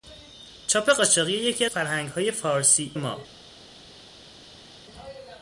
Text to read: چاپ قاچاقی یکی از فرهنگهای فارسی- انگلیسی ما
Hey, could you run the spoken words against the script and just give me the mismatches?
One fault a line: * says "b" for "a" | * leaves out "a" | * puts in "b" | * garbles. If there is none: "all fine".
* leaves out "از"
* leaves out "انگلیسی"